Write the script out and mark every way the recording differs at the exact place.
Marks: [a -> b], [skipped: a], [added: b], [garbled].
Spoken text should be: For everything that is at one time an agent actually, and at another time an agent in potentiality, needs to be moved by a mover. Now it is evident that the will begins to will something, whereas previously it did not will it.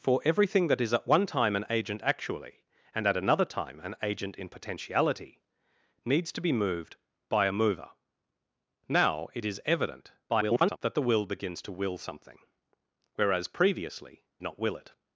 For everything that is at one time an agent actually, and at another time an agent in potentiality, needs to be moved by a mover. Now it is evident [garbled] that the will begins to will something, whereas previously [skipped: it did] not will it.